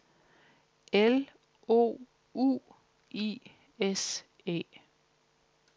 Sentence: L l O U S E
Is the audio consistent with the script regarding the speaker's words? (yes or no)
no